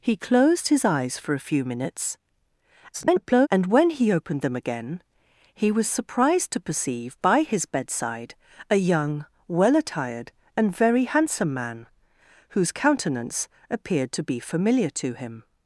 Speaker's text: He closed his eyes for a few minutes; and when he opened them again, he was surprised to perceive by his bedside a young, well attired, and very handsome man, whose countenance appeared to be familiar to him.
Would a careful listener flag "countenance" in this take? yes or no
no